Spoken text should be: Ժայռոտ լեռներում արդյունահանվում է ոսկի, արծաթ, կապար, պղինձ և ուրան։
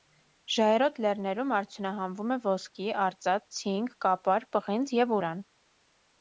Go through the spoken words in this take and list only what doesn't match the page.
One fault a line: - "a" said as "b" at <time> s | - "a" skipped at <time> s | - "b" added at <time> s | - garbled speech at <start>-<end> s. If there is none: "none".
- "ցինկ" added at 3.6 s